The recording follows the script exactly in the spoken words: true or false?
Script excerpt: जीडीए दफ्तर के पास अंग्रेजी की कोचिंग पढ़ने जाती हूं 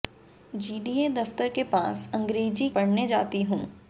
false